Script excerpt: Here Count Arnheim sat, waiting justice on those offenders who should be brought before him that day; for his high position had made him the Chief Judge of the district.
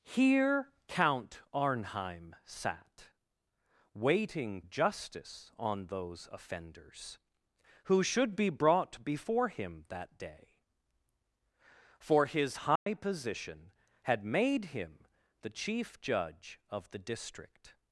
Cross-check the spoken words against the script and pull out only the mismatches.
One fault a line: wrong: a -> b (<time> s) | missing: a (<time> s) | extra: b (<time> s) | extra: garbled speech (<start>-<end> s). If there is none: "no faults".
no faults